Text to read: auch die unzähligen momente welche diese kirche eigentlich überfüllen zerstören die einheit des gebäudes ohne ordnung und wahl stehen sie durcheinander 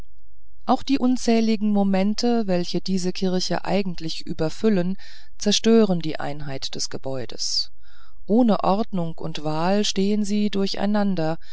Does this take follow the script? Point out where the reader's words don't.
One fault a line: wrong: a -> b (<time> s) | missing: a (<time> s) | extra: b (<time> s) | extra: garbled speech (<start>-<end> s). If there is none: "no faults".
no faults